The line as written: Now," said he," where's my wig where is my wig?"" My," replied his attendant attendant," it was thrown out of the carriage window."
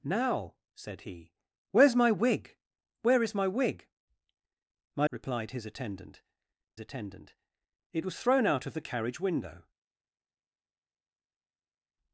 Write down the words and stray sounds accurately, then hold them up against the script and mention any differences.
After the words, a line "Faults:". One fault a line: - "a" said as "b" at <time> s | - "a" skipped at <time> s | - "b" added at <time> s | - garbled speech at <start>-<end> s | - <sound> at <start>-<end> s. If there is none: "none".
Now," said he," where's my wig where is my wig?"" My," replied his attendant attendant," it was thrown out of the carriage window."
Faults:
none